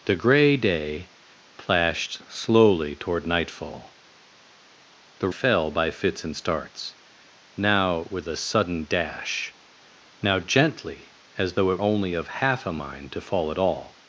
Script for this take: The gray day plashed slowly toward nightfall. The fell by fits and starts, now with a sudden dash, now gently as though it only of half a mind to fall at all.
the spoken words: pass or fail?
pass